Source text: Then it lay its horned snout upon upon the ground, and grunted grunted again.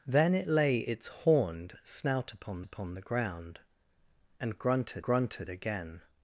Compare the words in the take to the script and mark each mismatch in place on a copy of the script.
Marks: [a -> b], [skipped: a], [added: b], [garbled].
Then it lay its horned snout upon upon the ground, and grunted grunted again.